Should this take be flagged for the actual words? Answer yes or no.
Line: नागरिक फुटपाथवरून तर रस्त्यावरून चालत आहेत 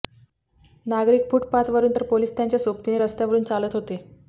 yes